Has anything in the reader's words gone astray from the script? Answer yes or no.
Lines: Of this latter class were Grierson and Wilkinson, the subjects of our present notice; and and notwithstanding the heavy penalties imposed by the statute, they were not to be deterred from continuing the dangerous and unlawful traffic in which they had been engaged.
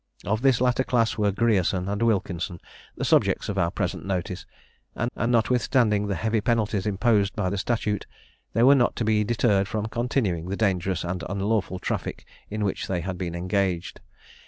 no